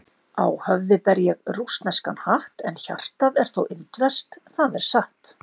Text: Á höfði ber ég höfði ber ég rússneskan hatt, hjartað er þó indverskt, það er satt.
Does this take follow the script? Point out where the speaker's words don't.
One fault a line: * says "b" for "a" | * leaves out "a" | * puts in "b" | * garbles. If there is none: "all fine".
* leaves out "höfði ber ég"
* puts in "en"